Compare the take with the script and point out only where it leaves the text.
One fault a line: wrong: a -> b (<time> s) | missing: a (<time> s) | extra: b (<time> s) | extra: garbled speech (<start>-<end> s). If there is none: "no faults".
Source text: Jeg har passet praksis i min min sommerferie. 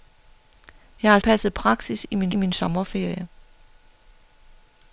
no faults